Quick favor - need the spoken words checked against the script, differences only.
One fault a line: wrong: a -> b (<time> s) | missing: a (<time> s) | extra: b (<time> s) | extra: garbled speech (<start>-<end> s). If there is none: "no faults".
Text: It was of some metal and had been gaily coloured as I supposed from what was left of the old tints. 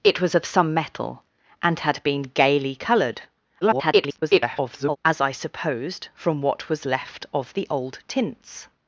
extra: garbled speech (3.6-5.0 s)